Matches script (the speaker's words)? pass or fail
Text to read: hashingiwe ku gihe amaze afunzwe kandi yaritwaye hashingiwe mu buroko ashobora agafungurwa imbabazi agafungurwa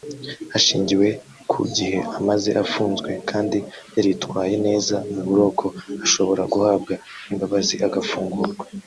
fail